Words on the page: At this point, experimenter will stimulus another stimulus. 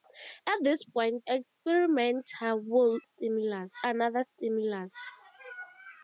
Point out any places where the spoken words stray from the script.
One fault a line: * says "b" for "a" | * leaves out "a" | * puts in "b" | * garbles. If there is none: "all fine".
all fine